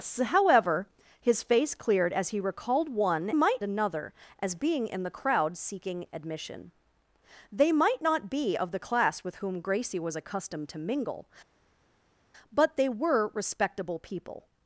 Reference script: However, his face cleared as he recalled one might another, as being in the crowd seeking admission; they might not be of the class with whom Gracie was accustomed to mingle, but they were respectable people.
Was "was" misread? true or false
false